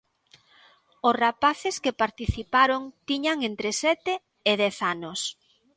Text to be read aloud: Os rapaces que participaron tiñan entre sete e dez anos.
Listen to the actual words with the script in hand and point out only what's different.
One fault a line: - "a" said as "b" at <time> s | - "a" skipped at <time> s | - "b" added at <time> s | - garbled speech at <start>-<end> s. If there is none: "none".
none